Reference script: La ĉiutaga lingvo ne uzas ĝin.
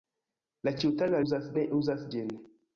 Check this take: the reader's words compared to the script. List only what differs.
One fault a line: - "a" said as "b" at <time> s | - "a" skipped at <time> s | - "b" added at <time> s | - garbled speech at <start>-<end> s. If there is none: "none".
- "lingvo" said as "uzas" at 1.3 s